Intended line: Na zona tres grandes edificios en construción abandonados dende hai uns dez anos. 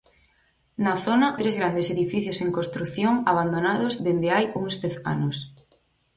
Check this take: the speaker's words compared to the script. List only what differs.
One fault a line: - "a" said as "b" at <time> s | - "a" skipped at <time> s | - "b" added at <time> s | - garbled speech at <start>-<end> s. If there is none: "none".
none